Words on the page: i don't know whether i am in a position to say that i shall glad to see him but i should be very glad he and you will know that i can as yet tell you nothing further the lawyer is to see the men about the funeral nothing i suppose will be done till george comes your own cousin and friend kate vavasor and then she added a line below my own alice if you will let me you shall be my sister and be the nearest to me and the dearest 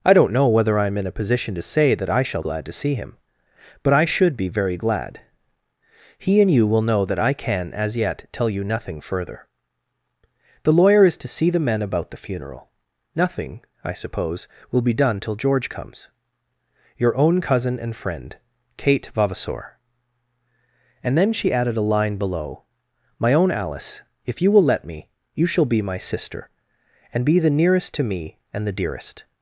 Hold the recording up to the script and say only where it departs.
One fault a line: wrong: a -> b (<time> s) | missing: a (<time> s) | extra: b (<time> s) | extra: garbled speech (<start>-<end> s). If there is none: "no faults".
no faults